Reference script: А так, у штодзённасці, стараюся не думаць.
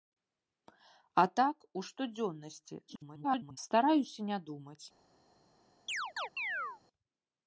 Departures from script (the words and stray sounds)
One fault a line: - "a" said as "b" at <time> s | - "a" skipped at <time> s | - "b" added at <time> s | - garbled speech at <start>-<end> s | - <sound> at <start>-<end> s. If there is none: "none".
- garbled speech at 2.9-3.6 s
- chirp at 5.9-6.8 s